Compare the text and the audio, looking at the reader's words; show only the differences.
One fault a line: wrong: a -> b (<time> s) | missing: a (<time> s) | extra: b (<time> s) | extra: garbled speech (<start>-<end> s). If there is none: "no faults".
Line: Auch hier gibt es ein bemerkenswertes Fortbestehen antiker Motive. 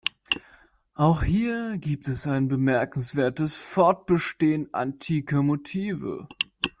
no faults